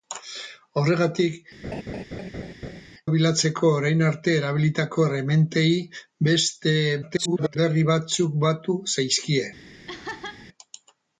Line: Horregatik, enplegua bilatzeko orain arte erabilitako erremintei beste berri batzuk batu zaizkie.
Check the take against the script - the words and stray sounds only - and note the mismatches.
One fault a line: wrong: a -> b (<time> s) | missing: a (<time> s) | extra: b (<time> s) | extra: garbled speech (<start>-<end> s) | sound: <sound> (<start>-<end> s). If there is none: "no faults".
missing: enplegua (1.4 s)
sound: laugh (1.6-2.8 s)
extra: garbled speech (7.0-7.6 s)
sound: laugh (9.9-10.5 s)